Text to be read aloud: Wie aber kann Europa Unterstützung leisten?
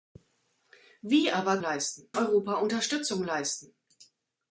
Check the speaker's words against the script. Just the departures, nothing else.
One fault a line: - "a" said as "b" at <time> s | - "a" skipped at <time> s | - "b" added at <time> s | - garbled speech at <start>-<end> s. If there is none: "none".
- "kann" said as "leisten" at 1.6 s